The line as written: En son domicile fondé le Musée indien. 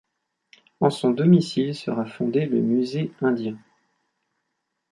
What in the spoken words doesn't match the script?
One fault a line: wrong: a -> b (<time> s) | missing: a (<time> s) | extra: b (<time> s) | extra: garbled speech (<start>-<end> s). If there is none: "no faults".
extra: sera (1.8 s)